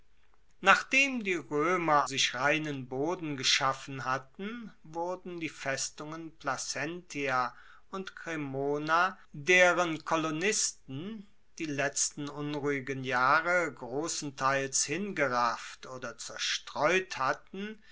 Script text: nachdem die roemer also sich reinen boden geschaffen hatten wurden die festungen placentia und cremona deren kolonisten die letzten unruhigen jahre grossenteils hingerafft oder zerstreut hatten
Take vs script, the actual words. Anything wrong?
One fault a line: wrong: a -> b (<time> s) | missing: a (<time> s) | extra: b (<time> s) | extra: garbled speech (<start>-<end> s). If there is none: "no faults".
missing: also (2.1 s)